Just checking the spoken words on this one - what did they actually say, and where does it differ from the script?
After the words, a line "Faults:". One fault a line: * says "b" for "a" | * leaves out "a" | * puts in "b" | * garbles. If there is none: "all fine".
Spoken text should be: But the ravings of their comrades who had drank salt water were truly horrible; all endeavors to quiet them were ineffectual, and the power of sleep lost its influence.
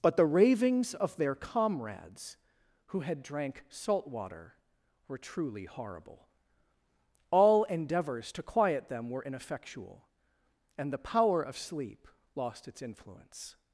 But the ravings of their comrades who had drank salt water were truly horrible; all endeavors to quiet them were ineffectual, and the power of sleep lost its influence.
Faults:
all fine